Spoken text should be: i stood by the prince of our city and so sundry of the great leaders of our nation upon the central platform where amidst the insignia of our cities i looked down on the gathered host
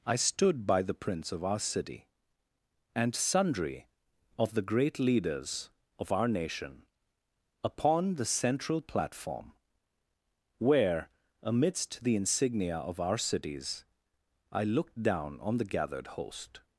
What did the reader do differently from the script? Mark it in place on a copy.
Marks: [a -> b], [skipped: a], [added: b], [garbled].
i stood by the prince of our city and [skipped: so] sundry of the great leaders of our nation upon the central platform where amidst the insignia of our cities i looked down on the gathered host